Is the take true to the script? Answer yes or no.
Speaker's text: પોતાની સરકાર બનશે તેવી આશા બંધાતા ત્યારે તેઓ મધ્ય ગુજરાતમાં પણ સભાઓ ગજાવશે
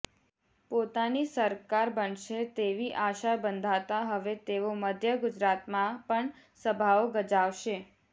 no